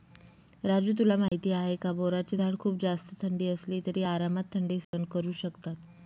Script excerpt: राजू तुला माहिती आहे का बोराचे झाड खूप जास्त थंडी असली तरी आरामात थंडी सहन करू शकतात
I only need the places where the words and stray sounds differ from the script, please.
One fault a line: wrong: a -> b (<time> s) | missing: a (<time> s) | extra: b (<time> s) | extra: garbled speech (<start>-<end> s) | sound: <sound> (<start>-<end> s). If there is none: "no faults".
sound: dropout (1.3-1.3 s)
sound: dropout (4.8-4.9 s)